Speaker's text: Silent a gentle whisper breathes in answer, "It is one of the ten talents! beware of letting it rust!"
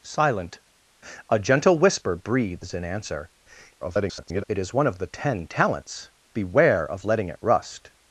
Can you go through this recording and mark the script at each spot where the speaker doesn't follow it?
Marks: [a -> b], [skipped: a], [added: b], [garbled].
Silent a gentle whisper breathes in answer, [garbled] "It is one of the ten talents! beware of letting it rust!"